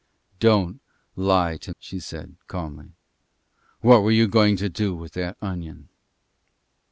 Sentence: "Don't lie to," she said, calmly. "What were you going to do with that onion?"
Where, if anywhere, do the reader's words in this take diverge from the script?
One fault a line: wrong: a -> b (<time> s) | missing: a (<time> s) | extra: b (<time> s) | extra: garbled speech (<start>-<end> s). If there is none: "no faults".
no faults